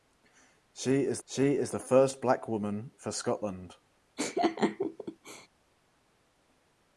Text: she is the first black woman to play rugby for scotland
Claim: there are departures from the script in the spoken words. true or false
true